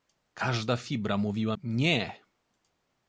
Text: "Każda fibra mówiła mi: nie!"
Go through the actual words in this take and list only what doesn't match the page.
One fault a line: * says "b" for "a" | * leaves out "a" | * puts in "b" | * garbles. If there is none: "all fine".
* leaves out "mi"